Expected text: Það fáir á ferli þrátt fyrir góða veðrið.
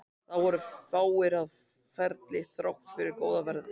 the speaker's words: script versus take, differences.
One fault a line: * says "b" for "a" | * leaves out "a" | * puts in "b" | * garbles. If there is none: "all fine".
* puts in "voru"